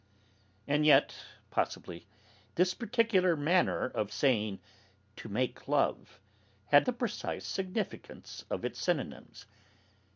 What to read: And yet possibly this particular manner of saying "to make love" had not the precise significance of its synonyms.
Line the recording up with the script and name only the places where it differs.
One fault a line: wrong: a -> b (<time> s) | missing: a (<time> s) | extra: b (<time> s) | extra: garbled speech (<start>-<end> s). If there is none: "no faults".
missing: not (6.9 s)